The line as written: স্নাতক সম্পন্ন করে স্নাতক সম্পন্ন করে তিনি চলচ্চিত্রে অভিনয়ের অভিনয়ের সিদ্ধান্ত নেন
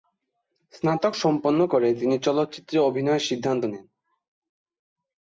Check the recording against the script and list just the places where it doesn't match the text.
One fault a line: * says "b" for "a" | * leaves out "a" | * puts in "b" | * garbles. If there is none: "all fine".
* leaves out "স্নাতক সম্পন্ন করে"
* leaves out "অভিনয়ের"